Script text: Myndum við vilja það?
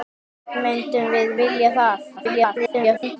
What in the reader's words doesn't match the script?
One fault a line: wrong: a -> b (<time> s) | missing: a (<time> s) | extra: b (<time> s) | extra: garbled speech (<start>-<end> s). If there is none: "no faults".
extra: garbled speech (2.2-3.2 s)